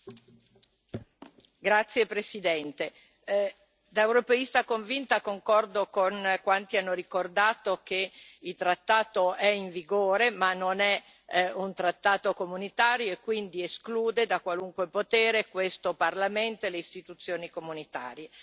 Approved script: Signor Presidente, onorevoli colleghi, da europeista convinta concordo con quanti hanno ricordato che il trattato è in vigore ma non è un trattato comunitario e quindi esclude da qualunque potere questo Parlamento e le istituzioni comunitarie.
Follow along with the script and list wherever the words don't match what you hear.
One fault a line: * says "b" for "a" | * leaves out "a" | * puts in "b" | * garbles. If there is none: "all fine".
all fine